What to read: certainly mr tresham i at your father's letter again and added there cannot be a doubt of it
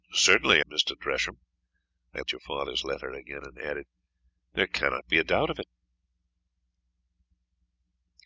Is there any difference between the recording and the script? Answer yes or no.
no